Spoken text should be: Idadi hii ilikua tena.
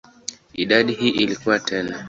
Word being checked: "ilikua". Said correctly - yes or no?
yes